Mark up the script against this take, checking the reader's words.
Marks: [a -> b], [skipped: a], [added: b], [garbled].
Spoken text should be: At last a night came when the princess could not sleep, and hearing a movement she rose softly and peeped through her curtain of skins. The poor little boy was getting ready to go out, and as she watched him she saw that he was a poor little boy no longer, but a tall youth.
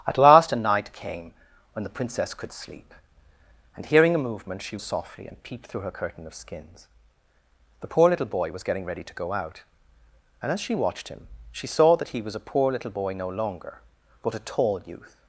At last a night came when the princess could [skipped: not] sleep, and hearing a movement she [skipped: rose] softly and peeped through her curtain of skins. The poor little boy was getting ready to go out, and as she watched him she saw that he was a poor little boy no longer, but a tall youth.